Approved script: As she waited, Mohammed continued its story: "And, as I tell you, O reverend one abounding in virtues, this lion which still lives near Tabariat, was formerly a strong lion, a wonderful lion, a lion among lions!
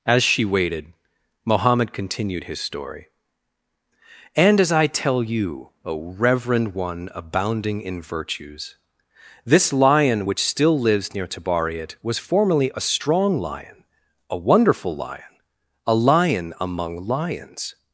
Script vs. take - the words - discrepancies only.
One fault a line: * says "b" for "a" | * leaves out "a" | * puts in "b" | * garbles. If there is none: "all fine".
* says "his" for "its"